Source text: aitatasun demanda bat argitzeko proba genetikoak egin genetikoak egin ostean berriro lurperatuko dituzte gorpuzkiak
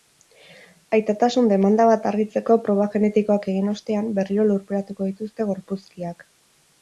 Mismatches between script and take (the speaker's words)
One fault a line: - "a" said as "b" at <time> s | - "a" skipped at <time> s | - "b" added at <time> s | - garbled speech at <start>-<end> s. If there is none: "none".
- "genetikoak egin" skipped at 3.7 s